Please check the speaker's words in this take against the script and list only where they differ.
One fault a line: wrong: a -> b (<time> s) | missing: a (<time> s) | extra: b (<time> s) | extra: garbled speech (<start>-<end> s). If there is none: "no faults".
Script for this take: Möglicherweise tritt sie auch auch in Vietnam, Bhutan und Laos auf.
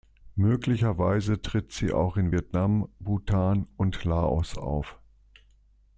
missing: auch (2.2 s)